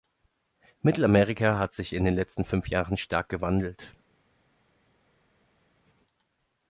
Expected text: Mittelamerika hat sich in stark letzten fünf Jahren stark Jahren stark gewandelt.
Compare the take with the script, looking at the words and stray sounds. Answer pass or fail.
fail